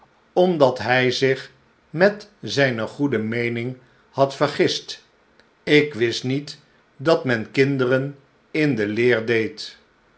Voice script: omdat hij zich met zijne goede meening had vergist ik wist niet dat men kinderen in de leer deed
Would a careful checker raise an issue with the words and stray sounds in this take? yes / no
no